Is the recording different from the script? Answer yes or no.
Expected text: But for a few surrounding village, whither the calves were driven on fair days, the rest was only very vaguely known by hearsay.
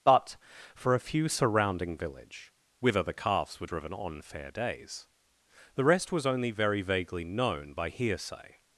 no